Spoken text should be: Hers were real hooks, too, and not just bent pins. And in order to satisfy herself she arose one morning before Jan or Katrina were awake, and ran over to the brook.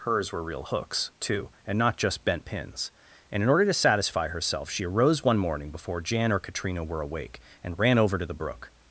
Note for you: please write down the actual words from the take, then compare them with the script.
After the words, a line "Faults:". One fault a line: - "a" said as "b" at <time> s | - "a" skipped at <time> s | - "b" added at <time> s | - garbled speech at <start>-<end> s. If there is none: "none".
Hers were real hooks, too, and not just bent pins. And in order to satisfy herself she arose one morning before Jan or Katrina were awake, and ran over to the brook.
Faults:
none